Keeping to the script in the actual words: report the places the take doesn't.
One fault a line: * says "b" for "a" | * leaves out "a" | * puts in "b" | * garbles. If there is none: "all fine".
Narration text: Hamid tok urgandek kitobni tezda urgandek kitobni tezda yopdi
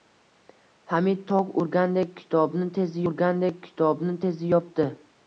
all fine